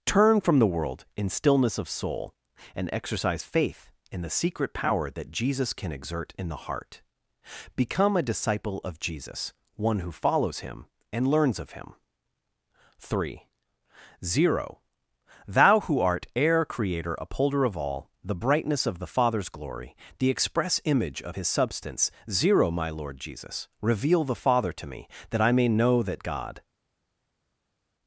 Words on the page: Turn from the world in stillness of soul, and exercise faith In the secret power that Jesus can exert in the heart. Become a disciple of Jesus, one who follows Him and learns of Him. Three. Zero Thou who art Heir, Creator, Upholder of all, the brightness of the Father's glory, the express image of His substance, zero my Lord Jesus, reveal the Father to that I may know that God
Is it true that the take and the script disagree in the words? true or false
true